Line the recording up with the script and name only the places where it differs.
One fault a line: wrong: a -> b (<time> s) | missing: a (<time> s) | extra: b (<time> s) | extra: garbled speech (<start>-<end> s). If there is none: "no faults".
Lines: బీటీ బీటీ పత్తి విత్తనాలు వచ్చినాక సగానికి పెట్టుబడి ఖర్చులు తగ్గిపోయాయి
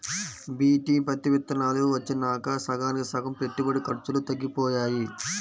missing: బీటీ (0.9 s)
extra: సగం (3.1 s)